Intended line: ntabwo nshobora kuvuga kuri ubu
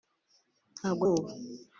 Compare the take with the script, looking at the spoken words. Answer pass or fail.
fail